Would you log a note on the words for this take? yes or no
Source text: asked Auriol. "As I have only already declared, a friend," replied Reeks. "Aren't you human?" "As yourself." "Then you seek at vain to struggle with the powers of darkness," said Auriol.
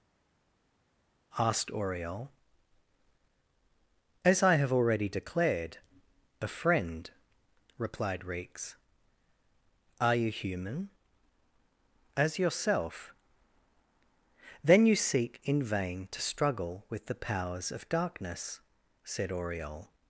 yes